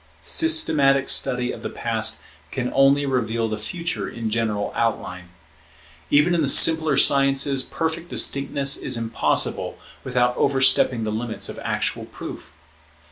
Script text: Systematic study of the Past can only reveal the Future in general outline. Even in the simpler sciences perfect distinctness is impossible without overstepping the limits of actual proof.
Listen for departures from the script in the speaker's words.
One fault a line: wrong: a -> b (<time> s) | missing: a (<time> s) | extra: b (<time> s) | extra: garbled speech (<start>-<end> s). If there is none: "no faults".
no faults